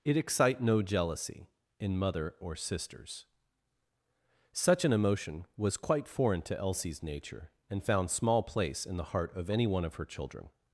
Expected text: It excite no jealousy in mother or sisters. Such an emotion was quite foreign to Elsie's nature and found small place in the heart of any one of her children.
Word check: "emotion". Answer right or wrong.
right